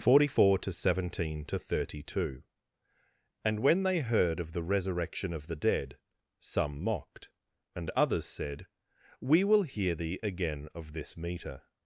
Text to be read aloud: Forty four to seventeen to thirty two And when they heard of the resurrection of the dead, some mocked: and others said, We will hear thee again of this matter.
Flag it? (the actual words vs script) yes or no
yes